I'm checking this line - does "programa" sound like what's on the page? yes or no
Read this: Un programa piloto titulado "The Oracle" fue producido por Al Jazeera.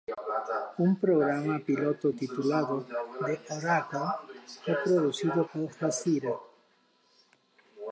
yes